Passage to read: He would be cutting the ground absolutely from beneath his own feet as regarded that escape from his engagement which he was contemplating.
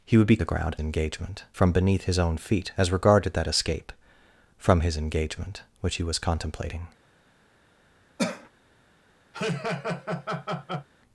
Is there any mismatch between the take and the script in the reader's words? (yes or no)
yes